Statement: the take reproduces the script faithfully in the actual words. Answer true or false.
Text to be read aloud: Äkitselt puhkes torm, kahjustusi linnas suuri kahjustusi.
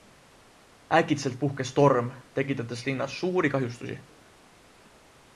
false